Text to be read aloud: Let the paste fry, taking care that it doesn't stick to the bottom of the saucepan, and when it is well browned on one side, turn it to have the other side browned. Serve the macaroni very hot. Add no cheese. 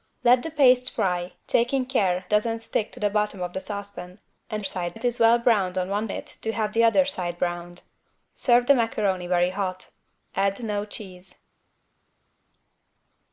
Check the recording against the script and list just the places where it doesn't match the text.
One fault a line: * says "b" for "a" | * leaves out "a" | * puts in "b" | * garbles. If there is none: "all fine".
* leaves out "that it"
* says "side" for "when"
* leaves out "side turn"